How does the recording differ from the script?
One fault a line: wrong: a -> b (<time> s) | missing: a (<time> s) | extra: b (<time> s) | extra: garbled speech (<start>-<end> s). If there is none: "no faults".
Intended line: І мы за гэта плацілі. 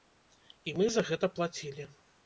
no faults